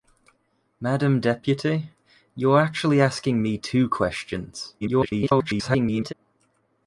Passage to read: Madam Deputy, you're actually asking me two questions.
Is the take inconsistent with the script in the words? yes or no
yes